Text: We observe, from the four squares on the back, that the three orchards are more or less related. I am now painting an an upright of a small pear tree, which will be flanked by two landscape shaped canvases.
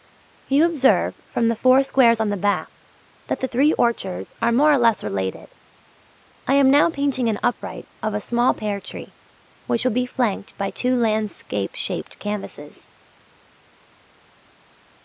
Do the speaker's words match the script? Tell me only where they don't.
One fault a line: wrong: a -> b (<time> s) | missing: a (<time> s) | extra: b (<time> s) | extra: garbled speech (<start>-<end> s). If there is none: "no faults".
wrong: We -> You (0.5 s)
missing: an (7.4 s)